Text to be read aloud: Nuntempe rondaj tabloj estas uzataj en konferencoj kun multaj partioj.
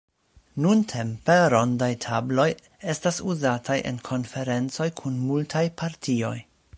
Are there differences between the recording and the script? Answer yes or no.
no